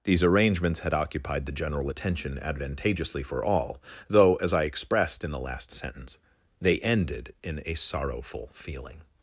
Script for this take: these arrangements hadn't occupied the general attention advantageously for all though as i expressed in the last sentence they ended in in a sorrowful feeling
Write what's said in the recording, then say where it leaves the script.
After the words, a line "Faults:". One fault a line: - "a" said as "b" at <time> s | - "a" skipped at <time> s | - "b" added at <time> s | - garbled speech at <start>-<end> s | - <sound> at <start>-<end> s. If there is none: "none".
these arrangements had occupied the general attention advantageously for all though as i expressed in the last sentence they ended in a sorrowful feeling
Faults:
- "hadn't" said as "had" at 0.8 s
- "in" skipped at 7.6 s